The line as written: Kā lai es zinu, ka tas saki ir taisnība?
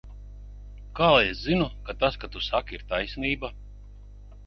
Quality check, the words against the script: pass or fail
fail